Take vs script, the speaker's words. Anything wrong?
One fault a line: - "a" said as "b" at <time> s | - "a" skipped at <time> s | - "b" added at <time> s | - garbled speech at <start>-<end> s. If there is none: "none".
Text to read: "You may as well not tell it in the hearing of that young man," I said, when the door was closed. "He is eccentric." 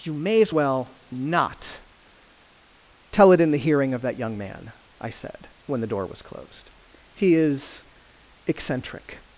none